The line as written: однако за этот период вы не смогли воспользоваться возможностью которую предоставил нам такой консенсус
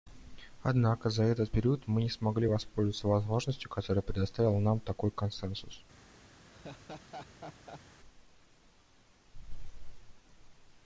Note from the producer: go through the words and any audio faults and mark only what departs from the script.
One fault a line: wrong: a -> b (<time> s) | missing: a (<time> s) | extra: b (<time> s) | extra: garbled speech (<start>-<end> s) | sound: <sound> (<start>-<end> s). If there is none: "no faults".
wrong: вы -> мы (1.9 s)
sound: laugh (6.5-7.8 s)